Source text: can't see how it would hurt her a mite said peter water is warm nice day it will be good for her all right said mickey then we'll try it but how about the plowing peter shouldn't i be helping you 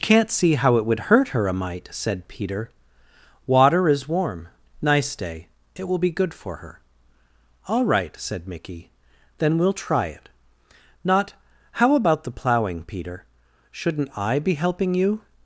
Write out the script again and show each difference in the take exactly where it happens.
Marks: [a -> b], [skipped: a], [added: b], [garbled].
can't see how it would hurt her a mite said peter water is warm nice day it will be good for her all right said mickey then we'll try it [but -> not] how about the plowing peter shouldn't i be helping you